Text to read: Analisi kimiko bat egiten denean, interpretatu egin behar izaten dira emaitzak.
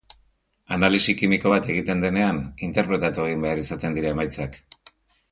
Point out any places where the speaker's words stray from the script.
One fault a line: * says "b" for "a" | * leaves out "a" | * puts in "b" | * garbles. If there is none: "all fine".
all fine